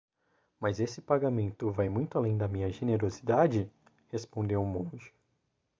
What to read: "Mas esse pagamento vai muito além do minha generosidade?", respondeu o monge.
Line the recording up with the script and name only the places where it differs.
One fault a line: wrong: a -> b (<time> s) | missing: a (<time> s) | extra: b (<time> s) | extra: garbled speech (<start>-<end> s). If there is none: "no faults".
wrong: do -> da (2.4 s)